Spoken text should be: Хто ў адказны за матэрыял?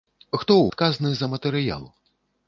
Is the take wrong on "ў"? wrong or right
right